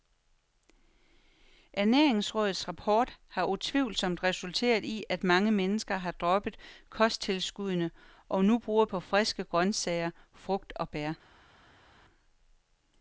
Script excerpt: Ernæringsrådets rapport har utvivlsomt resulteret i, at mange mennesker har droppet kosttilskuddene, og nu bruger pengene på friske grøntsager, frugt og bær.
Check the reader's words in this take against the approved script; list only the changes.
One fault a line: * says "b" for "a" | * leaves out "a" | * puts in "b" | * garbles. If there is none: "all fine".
* leaves out "pengene"